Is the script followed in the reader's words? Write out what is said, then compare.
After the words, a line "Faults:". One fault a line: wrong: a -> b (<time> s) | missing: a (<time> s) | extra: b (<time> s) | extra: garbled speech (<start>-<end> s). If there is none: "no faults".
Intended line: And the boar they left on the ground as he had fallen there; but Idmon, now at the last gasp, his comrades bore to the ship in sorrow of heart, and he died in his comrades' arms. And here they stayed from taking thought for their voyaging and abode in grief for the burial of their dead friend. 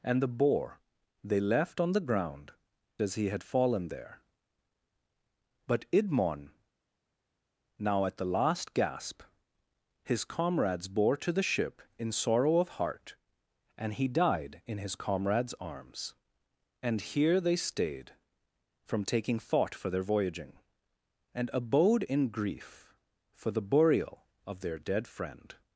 And the boar they left on the ground as he had fallen there; but Idmon, now at the last gasp, his comrades bore to the ship in sorrow of heart, and he died in his comrades' arms. And here they stayed from taking thought for their voyaging and abode in grief for the burial of their dead friend.
Faults:
no faults